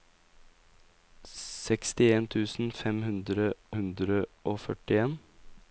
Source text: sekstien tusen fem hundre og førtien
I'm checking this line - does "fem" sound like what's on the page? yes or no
yes